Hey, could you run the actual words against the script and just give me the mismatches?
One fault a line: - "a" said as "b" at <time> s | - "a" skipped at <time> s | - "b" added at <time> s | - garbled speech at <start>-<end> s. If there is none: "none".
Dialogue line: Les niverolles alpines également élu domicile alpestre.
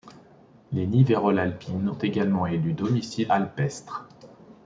none